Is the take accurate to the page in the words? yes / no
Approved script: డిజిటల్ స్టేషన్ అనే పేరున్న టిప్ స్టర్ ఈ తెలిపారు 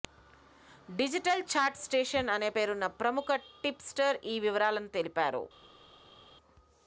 no